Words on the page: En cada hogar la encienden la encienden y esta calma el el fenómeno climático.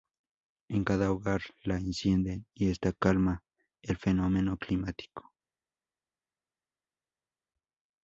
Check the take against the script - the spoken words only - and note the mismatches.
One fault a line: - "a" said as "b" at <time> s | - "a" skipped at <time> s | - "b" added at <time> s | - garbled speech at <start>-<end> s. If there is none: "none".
- "la encienden" skipped at 2.5 s
- "el" skipped at 4.0 s